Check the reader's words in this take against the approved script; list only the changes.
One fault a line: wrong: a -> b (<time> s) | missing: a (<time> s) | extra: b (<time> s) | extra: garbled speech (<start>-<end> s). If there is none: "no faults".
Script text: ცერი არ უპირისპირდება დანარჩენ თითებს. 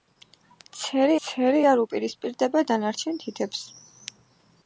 extra: ცერი (1.3 s)